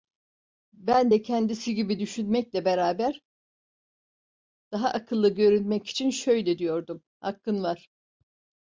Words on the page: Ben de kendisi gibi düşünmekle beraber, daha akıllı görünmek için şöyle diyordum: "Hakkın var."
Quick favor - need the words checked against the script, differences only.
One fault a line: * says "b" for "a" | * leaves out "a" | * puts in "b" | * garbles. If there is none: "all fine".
all fine